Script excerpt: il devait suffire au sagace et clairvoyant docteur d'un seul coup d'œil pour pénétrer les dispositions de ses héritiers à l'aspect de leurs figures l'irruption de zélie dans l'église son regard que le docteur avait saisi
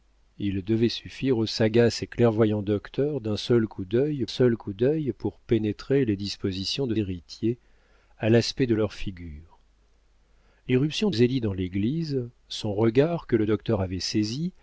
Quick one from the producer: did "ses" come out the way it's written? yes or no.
no